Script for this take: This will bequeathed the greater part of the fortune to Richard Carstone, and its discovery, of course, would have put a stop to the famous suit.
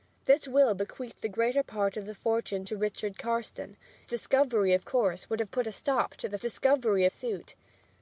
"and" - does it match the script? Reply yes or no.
no